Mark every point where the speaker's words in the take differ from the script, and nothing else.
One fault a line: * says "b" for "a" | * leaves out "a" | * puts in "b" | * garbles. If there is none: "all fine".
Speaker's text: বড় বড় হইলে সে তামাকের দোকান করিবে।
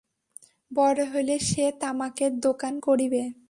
* leaves out "বড়"